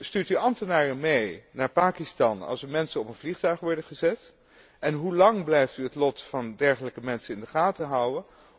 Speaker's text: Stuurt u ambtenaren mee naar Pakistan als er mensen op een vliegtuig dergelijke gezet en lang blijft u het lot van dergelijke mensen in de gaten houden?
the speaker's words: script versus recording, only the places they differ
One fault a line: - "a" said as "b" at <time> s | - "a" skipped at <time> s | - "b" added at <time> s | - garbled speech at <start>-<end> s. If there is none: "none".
- "dergelijke" said as "worden" at 3.6 s
- "hoe" added at 4.9 s